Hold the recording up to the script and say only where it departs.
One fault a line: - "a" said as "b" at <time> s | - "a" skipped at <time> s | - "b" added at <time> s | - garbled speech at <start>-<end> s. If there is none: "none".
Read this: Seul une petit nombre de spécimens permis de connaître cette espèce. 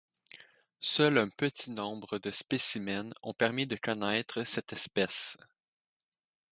- "une" said as "un" at 1.2 s
- "ont" added at 3.2 s